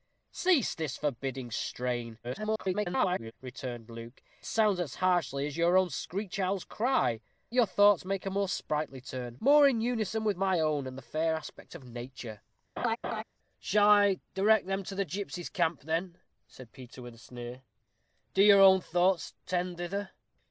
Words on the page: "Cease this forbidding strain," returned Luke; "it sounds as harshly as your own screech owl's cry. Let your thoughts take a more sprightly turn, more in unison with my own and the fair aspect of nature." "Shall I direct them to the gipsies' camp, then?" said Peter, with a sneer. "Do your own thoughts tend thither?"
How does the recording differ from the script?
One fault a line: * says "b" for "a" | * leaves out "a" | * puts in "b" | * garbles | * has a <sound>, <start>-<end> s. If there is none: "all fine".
* garbles
* leaves out "it"
* leaves out "Let"
* has a laugh, 12.8-13.2 s